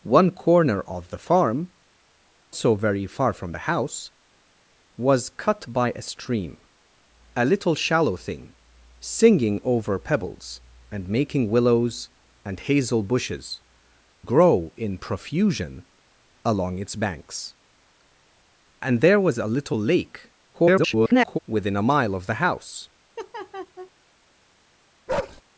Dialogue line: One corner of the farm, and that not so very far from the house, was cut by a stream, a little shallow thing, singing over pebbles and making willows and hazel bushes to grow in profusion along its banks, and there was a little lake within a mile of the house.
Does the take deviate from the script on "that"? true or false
true